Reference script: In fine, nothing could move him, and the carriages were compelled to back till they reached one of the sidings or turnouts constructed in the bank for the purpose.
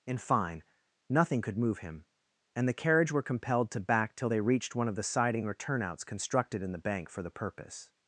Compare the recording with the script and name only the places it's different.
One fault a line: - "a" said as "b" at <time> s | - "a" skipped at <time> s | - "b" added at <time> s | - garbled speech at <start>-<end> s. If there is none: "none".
- "carriages" said as "carriage" at 2.7 s
- "sidings" said as "siding" at 5.0 s